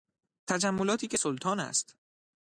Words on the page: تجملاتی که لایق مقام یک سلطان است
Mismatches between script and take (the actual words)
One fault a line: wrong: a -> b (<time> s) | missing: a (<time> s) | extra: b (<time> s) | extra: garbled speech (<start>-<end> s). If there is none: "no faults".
missing: لایق مقام یک (1.2 s)